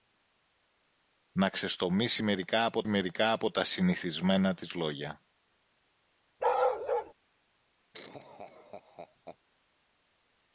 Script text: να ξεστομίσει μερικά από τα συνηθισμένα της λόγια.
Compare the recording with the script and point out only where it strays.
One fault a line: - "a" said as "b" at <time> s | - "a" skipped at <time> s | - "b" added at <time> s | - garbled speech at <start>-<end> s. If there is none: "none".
- "μερικά από" added at 2.9 s